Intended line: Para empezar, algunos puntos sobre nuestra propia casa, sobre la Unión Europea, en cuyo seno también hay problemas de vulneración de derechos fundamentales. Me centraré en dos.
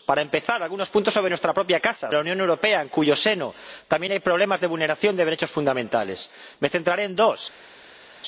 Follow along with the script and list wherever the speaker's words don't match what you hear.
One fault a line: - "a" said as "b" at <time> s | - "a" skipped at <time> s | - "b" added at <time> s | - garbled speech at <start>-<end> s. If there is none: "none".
- "sobre" skipped at 2.1 s